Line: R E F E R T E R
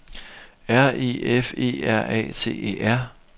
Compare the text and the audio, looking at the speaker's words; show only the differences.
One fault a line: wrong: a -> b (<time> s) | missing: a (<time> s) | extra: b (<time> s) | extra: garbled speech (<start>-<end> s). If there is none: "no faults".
extra: A (2.1 s)